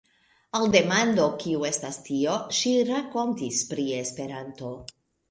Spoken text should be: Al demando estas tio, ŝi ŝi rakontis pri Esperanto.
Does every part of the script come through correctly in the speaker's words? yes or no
no